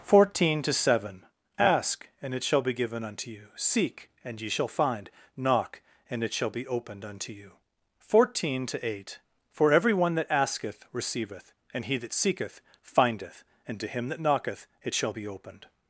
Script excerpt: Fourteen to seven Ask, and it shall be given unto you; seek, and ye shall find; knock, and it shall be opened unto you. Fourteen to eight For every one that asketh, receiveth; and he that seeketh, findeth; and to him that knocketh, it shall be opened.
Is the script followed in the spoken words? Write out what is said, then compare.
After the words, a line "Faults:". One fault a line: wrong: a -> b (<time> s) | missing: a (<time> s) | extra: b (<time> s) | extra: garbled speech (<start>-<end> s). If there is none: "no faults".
Fourteen to seven Ask, and it shall be given unto you; seek, and ye shall find; knock, and it shall be opened unto you. Fourteen to eight For every one that asketh, receiveth; and he that seeketh, findeth; and to him that knocketh, it shall be opened.
Faults:
no faults